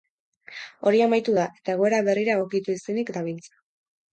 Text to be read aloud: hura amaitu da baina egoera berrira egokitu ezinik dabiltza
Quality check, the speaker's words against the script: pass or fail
fail